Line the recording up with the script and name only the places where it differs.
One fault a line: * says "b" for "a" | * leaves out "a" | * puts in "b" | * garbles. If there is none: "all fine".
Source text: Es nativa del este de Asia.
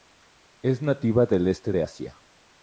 all fine